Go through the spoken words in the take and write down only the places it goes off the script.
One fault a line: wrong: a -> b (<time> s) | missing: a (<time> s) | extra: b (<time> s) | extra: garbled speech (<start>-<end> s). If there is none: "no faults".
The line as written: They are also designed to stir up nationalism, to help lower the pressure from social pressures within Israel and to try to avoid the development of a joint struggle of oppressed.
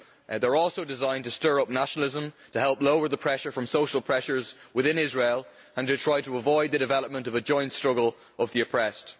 extra: the (8.5 s)